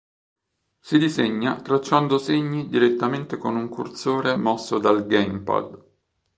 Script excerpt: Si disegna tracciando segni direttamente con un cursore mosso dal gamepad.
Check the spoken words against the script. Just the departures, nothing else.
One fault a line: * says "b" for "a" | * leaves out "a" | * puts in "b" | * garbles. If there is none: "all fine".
all fine